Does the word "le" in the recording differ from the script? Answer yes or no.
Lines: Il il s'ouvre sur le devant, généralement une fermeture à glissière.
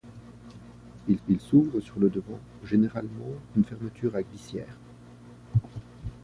no